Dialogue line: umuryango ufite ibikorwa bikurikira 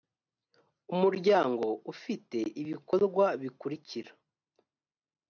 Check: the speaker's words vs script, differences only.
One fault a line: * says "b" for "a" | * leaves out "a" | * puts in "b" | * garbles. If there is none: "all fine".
all fine